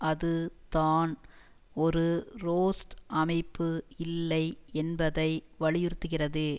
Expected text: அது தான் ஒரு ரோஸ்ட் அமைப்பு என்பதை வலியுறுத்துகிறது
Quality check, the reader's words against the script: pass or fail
fail